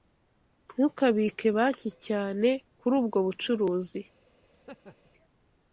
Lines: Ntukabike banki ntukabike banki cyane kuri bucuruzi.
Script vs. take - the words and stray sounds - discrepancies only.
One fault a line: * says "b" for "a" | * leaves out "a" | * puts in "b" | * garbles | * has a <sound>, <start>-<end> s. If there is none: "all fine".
* leaves out "ntukabike banki"
* puts in "ubwo"
* has a laugh, 4.5-5.1 s